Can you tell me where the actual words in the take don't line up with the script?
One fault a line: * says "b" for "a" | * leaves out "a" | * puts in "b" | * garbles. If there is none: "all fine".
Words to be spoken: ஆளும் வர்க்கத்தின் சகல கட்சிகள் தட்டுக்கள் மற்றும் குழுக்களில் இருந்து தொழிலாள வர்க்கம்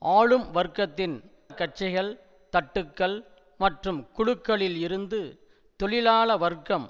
* leaves out "சகல"